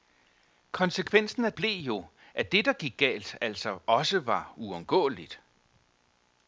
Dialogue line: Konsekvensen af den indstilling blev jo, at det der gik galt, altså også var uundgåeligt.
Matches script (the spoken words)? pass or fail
fail